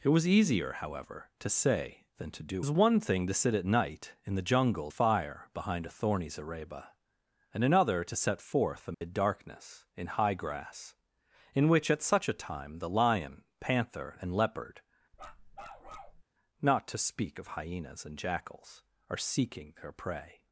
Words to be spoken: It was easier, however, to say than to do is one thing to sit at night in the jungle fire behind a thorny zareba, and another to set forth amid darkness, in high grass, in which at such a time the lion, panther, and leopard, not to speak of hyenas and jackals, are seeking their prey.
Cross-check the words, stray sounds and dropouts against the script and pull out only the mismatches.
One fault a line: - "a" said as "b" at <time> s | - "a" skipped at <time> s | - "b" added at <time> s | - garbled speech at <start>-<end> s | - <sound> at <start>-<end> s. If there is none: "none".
- dropout at 8.9-9.0 s
- bark at 15.1-16.2 s